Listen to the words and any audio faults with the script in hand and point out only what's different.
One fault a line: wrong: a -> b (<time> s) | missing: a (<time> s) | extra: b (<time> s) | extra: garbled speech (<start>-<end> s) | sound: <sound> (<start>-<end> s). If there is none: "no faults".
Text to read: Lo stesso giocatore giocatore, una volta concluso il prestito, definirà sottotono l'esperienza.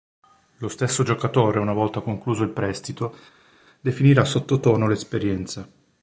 missing: giocatore (1.6 s)